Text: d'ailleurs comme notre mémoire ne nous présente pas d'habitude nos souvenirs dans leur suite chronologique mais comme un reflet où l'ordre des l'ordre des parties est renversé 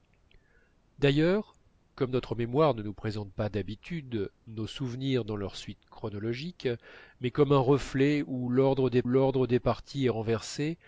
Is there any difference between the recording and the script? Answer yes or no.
no